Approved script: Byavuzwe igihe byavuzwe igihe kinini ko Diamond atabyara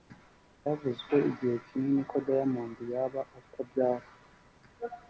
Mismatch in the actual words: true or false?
true